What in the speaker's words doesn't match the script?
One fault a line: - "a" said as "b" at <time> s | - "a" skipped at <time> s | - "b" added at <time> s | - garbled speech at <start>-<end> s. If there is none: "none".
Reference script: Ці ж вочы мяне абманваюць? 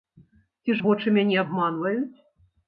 none